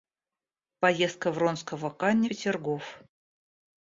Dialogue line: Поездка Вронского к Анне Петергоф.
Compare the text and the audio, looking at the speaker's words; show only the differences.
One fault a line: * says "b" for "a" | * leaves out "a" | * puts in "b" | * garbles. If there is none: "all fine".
all fine